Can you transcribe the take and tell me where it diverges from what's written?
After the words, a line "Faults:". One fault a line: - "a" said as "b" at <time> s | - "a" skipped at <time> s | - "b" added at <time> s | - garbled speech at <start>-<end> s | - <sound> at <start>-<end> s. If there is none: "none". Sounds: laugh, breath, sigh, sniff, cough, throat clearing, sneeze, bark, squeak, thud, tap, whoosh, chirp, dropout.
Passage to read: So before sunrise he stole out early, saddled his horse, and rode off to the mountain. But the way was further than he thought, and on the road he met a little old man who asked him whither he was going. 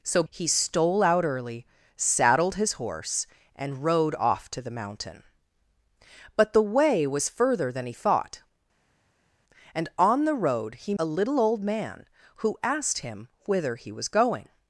So he stole out early, saddled his horse, and rode off to the mountain. But the way was further than he thought, and on the road he a little old man who asked him whither he was going.
Faults:
- "before sunrise" skipped at 0.2 s
- "met" skipped at 10.9 s